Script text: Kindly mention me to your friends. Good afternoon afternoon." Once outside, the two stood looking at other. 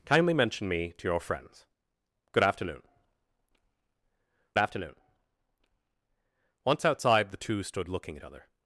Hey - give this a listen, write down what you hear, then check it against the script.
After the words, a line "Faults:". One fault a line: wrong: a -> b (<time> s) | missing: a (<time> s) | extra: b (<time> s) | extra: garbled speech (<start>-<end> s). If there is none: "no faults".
Kindly mention me to your friends. Good afternoon afternoon." Once outside, the two stood looking at other.
Faults:
no faults